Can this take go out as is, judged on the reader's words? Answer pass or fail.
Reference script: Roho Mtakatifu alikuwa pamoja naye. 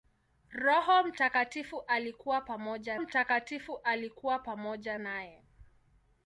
fail